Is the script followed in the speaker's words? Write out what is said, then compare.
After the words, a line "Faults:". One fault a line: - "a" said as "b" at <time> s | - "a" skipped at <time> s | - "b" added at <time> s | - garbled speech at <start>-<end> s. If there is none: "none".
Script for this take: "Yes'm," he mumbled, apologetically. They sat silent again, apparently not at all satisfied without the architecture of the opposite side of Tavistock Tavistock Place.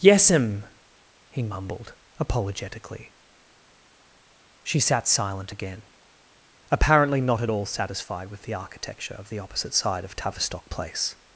"Yes'm," he mumbled, apologetically. She sat silent again, apparently not at all satisfied with the architecture of the opposite side of Tavistock Place.
Faults:
- "They" said as "She" at 4.6 s
- "without" said as "with" at 8.3 s
- "Tavistock" skipped at 10.7 s